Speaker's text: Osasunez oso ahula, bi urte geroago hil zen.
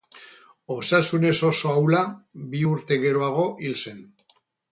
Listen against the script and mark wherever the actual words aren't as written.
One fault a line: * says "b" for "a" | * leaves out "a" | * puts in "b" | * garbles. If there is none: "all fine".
all fine